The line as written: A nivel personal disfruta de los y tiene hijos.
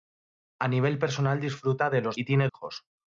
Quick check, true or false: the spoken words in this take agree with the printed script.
true